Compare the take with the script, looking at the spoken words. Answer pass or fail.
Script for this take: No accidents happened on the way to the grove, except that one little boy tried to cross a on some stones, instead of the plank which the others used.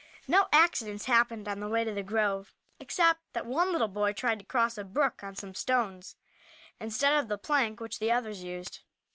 fail